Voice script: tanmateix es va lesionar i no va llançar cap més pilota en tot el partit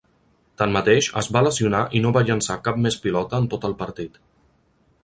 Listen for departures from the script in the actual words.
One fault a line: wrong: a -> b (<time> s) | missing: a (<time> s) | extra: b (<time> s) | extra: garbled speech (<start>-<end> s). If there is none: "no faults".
no faults